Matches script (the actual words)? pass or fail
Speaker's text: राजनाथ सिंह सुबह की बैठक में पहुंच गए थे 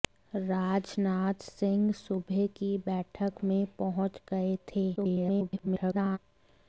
fail